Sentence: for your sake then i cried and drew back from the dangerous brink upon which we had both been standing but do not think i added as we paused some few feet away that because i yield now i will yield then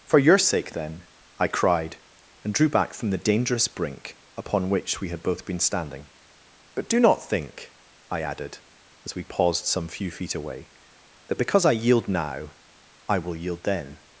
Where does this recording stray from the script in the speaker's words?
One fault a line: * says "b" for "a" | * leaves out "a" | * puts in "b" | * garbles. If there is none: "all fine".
all fine